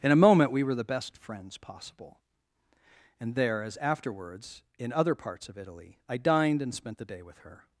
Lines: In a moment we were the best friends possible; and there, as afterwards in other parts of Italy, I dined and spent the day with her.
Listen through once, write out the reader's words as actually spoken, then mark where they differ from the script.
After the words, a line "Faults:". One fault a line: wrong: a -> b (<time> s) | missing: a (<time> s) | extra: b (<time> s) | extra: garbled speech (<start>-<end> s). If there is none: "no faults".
In a moment we were the best friends possible; and there, as afterwards in other parts of Italy, I dined and spent the day with her.
Faults:
no faults